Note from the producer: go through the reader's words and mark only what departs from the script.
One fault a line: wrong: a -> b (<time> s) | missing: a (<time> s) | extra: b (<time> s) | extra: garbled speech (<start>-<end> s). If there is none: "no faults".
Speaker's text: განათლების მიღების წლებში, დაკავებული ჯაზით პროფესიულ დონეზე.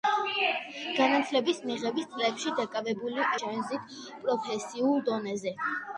no faults